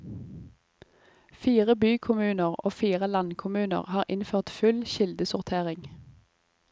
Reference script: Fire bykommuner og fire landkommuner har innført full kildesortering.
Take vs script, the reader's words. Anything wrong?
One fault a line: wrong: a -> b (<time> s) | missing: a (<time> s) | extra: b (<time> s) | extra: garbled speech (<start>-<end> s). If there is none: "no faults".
no faults